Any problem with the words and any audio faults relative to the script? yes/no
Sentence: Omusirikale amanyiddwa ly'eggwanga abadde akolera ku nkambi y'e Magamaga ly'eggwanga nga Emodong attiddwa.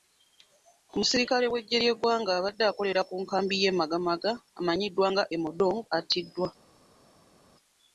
yes